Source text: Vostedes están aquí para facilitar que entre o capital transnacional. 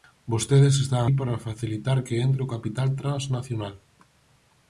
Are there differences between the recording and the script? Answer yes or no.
yes